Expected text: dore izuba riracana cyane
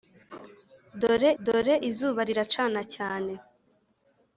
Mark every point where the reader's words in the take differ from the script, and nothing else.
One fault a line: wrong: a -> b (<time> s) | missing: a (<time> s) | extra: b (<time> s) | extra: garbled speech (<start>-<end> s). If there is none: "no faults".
extra: dore (1.4 s)